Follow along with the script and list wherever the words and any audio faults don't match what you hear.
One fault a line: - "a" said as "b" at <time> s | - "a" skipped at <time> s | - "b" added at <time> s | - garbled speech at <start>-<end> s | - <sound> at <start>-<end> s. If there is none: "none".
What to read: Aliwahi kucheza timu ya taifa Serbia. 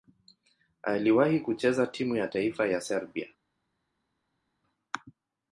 - "ya" added at 2.7 s